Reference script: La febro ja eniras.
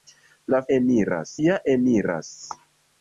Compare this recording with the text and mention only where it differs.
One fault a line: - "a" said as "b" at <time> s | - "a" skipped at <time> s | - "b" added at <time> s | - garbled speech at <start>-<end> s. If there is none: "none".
- "febro" said as "eniras" at 0.8 s